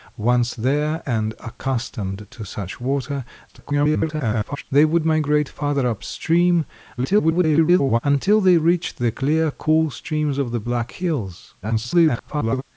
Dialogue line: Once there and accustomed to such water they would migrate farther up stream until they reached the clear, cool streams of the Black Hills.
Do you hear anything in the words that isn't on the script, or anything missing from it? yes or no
yes